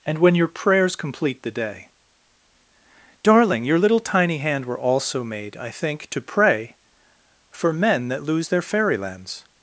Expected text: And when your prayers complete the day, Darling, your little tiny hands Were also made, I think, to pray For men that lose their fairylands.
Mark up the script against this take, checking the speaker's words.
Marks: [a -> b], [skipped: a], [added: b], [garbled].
And when your prayers complete the day, Darling, your little tiny [hands -> hand] Were also made, I think, to pray For men that lose their fairylands.